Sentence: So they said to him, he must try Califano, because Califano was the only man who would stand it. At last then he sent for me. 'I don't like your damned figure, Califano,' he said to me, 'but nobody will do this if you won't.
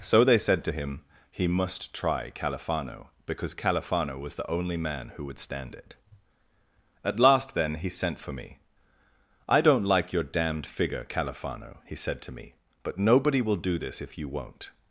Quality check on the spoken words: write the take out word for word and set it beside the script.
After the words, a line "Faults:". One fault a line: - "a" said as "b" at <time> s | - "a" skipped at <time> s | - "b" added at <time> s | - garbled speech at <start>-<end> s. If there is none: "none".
So they said to him, he must try Califano, because Califano was the only man who would stand it. At last then he sent for me. 'I don't like your damned figure, Califano,' he said to me, 'but nobody will do this if you won't.
Faults:
none